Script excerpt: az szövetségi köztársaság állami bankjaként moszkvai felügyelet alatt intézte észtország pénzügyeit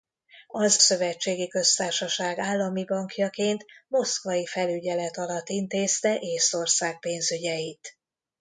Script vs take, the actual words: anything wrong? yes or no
no